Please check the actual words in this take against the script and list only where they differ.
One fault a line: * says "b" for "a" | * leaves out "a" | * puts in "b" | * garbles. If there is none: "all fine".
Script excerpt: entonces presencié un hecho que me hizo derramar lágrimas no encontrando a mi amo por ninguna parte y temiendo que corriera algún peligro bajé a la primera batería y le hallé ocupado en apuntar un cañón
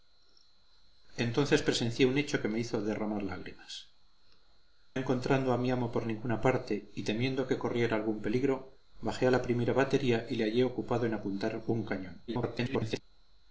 * leaves out "no"
* garbles